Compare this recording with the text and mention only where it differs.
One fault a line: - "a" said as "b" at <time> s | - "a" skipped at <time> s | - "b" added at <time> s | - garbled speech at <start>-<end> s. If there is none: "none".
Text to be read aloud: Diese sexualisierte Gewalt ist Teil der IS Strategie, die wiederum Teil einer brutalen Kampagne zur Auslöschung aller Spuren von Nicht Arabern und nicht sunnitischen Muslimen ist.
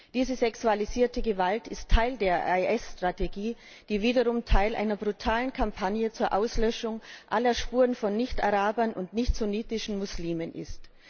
none